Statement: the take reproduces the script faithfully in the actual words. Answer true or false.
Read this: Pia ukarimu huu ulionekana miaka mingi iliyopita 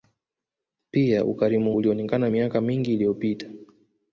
false